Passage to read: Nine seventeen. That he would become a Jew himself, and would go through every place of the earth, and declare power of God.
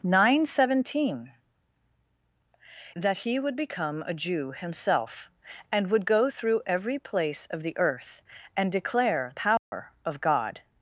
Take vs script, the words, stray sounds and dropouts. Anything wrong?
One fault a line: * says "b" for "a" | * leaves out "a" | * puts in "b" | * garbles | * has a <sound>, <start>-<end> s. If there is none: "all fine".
* has a dropout, 9.6-9.7 s